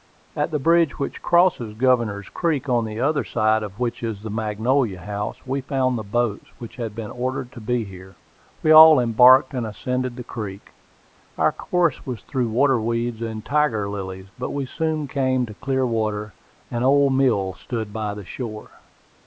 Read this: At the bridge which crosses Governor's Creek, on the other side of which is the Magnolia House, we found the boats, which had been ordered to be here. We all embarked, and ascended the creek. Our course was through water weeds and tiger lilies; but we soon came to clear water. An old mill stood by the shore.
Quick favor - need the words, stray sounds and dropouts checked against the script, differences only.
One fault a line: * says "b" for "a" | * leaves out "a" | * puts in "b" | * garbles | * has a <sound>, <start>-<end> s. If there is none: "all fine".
all fine